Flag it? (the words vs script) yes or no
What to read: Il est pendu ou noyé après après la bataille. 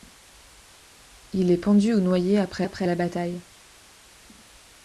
no